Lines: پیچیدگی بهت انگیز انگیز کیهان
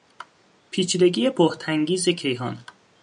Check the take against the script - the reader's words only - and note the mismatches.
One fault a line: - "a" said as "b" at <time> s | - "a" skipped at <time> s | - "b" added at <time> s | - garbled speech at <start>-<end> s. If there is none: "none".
- "انگیز" skipped at 2.1 s